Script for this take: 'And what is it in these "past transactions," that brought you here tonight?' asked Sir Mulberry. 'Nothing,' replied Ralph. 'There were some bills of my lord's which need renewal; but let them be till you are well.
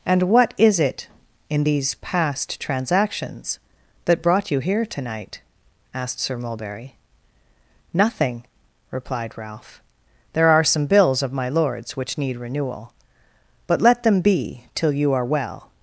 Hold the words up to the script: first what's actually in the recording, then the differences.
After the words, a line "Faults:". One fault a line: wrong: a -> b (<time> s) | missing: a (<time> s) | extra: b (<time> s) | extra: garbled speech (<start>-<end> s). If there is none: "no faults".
'And what is it in these "past transactions," that brought you here tonight?' asked Sir Mulberry. 'Nothing,' replied Ralph. 'There are some bills of my lord's which need renewal; but let them be till you are well.
Faults:
wrong: were -> are (10.5 s)